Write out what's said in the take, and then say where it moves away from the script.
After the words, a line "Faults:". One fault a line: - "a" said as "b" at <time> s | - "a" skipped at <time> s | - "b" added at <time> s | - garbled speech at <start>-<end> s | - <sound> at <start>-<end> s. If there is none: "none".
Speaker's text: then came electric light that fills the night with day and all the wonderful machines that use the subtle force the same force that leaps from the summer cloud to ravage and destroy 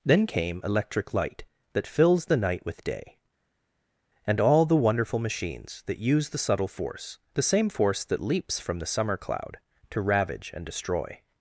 then came electric light that fills the night with day and all the wonderful machines that use the subtle force the same force that leaps from the summer cloud to ravage and destroy
Faults:
none